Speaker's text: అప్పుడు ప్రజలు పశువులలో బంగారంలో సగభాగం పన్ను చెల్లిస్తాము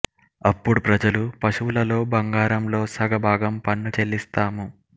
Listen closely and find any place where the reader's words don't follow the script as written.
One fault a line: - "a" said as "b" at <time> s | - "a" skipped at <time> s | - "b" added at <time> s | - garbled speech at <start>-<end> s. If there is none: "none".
none